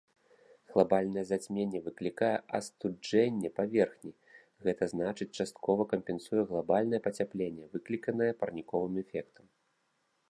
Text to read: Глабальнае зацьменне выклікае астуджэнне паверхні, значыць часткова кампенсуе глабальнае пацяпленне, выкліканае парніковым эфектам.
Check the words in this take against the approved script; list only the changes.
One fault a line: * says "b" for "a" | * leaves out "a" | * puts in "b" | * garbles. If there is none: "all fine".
* puts in "гэта"